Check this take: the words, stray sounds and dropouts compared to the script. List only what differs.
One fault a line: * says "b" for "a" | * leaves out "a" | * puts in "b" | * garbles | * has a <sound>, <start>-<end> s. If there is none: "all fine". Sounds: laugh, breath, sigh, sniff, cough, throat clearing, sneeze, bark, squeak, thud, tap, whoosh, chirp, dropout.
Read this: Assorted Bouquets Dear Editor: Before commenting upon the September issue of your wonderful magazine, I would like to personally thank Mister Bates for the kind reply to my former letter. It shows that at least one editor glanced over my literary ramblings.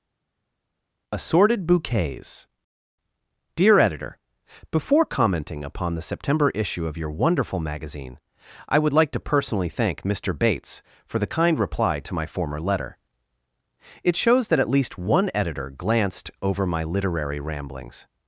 all fine